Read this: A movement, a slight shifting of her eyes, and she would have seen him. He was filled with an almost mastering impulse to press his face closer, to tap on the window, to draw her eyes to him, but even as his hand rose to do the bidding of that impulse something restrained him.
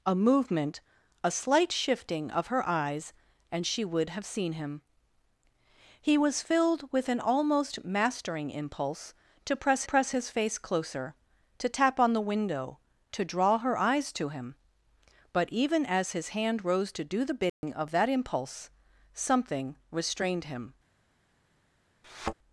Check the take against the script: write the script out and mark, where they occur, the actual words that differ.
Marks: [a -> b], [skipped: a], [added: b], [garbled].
A movement, a slight shifting of her eyes, and she would have seen him. He was filled with an almost mastering impulse to press [added: press] his face closer, to tap on the window, to draw her eyes to him, but even as his hand rose to do the bidding of that impulse something restrained him.